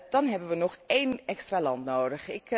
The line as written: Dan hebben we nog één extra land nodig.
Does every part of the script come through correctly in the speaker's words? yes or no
yes